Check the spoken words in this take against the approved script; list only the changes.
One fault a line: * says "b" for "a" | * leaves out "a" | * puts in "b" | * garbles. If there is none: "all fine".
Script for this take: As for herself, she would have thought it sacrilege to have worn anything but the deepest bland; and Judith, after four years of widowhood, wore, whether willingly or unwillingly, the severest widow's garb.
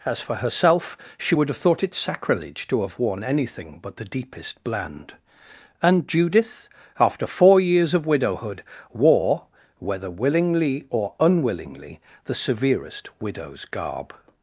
all fine